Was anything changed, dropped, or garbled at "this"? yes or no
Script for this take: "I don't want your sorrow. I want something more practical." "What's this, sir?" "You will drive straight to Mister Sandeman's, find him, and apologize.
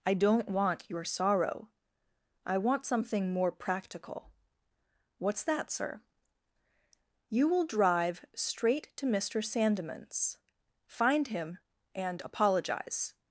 yes